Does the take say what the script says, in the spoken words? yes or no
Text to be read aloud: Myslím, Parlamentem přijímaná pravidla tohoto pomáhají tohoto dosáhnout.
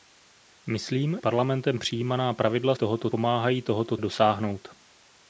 yes